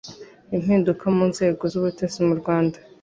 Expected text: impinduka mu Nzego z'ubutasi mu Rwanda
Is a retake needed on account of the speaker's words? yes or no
no